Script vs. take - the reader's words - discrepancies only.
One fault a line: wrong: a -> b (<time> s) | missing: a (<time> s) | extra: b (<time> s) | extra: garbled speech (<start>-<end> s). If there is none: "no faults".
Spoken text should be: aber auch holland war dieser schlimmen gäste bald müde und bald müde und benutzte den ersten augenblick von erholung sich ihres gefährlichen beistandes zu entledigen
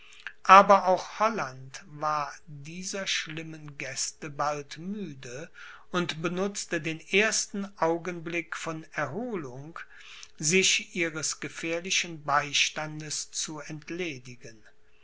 missing: bald müde und (6.2 s)